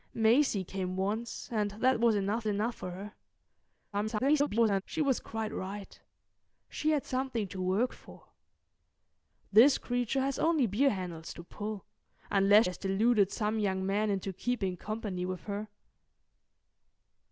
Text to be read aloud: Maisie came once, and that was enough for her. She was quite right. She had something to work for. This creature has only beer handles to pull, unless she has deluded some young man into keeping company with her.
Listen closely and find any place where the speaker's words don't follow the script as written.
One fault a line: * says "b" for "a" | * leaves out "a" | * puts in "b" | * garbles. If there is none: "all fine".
* puts in "enough"
* garbles
* leaves out "she"